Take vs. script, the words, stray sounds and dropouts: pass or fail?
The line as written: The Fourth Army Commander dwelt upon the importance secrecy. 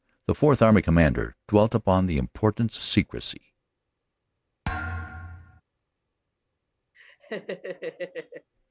fail